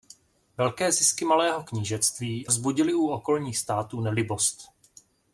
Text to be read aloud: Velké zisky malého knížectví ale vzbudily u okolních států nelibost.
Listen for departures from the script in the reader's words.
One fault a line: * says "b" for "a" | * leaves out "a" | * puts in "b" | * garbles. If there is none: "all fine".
* leaves out "ale"